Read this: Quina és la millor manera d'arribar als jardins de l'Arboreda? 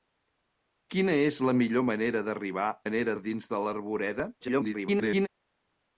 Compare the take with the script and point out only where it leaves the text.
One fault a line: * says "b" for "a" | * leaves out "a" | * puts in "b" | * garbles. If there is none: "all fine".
* says "manera" for "als"
* garbles